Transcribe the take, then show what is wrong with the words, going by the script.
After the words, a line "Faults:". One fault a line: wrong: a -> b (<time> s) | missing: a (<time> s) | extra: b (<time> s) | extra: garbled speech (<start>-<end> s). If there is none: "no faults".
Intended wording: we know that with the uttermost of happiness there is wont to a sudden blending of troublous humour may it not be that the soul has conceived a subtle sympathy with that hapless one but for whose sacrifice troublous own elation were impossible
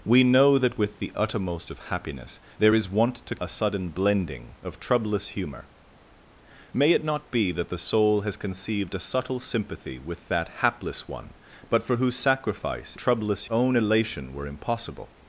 we know that with the uttermost of happiness there is wont to a sudden blending of troublous humour may it not be that the soul has conceived a subtle sympathy with that hapless one but for whose sacrifice troublous own elation were impossible
Faults:
no faults